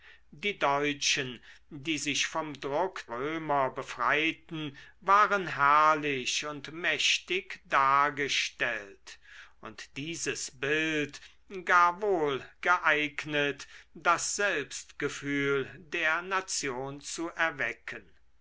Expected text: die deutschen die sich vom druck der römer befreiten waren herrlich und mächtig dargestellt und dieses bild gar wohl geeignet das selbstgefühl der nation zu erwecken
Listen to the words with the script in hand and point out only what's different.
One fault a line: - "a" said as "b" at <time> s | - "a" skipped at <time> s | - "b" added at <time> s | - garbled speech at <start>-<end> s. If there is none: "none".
- "der" skipped at 3.0 s